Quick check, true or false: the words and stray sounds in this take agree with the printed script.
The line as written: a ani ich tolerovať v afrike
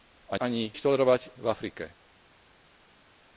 true